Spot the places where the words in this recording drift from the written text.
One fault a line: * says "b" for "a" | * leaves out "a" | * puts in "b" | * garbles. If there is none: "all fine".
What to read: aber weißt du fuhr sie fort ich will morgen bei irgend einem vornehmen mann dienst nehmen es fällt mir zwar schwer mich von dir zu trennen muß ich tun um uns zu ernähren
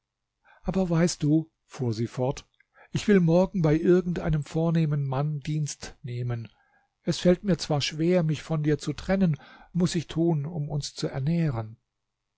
all fine